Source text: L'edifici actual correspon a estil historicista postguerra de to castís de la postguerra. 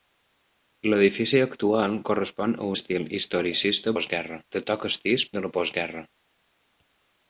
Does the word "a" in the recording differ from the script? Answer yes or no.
no